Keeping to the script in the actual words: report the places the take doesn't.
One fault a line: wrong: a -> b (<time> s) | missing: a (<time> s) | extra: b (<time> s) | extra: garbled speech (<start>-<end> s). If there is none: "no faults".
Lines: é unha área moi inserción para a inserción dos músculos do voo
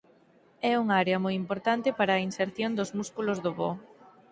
wrong: inserción -> importante (1.4 s)